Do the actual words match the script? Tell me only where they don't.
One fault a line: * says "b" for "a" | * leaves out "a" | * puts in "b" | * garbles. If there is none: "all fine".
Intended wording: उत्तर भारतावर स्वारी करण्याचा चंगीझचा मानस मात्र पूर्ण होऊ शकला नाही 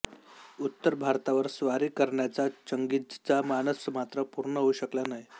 all fine